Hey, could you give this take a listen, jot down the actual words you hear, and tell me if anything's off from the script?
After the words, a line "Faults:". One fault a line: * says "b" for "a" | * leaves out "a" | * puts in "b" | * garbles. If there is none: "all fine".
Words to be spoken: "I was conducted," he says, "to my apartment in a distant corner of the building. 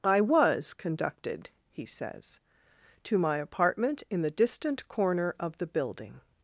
"I was conducted," he says, "to my apartment in the distant corner of the building.
Faults:
* says "the" for "a"